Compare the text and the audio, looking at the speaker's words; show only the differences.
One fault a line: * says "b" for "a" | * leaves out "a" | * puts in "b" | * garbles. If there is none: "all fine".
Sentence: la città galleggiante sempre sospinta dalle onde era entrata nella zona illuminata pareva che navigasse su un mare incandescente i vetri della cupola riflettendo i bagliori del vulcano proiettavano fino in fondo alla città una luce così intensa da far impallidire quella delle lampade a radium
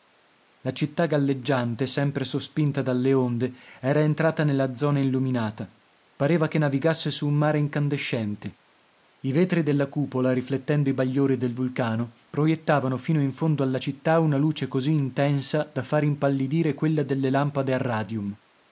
all fine